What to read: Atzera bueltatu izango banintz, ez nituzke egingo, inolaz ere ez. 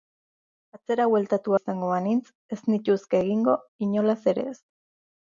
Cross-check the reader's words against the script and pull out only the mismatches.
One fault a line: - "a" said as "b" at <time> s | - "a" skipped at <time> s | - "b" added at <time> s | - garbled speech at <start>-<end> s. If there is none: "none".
none